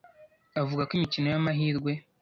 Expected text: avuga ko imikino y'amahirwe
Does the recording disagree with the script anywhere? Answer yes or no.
no